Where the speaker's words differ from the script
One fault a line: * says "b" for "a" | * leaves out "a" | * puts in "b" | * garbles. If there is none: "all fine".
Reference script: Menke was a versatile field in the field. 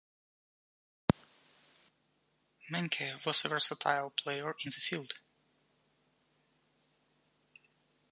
* says "player" for "field"